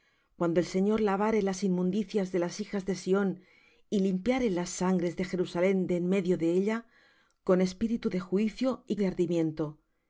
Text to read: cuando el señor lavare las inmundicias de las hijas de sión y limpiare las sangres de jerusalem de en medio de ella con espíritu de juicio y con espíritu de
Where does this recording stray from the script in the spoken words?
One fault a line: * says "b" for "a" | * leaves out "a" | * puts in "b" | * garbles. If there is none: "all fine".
* leaves out "con espíritu"